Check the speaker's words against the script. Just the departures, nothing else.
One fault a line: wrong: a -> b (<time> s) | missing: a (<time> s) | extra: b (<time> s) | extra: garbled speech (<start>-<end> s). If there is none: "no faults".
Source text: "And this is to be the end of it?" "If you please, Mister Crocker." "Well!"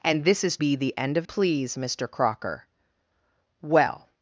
missing: to (0.6 s)
missing: it If you (1.3 s)